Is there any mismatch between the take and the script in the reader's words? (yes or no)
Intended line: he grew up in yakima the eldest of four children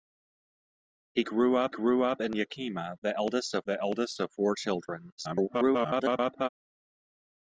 yes